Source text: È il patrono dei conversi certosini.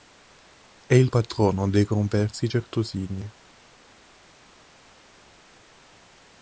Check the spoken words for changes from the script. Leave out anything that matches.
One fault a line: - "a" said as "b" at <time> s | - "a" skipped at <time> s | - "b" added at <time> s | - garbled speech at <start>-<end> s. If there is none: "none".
none